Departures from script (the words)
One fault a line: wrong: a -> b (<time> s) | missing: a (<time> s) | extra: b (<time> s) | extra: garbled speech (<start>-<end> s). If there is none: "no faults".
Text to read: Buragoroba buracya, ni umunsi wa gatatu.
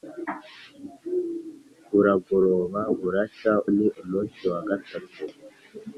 no faults